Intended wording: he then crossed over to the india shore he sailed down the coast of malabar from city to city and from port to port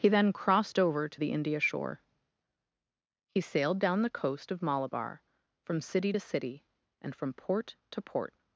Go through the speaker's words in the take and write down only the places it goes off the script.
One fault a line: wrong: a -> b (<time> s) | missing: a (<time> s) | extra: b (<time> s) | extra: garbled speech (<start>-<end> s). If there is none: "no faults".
no faults